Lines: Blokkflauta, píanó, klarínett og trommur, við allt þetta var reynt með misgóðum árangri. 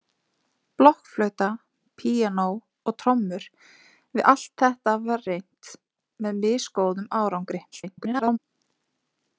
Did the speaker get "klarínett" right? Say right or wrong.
wrong